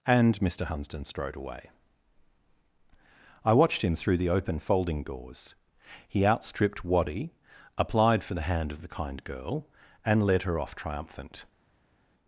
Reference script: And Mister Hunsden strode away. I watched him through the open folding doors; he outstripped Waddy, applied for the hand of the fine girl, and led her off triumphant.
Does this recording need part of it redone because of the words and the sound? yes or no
yes